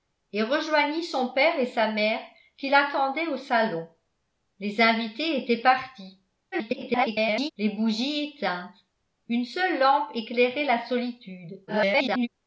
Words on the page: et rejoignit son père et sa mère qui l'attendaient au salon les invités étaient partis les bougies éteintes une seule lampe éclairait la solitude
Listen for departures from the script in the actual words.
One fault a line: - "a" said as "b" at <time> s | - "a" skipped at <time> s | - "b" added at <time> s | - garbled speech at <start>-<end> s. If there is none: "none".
- garbled speech at 6.5-7.5 s
- garbled speech at 11.7-12.3 s